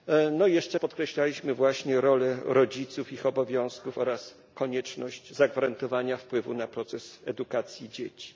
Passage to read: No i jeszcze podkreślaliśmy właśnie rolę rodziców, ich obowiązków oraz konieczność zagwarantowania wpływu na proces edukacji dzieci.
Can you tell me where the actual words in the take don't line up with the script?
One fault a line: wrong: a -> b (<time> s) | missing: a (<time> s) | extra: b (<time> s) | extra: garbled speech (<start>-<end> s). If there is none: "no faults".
no faults